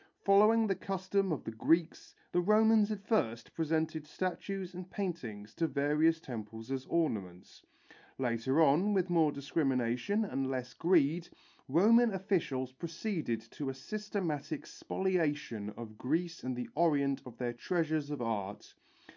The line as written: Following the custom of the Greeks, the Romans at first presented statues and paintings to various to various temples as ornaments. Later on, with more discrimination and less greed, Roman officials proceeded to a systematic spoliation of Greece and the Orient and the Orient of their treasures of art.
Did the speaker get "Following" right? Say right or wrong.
right